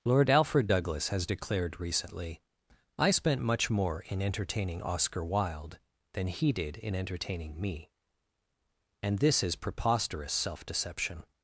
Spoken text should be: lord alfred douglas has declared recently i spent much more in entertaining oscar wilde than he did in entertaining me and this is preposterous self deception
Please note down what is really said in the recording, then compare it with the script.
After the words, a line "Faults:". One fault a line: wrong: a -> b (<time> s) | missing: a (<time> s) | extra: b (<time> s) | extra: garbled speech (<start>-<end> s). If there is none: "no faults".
lord alfred douglas has declared recently i spent much more in entertaining oscar wilde than he did in entertaining me and this is preposterous self deception
Faults:
no faults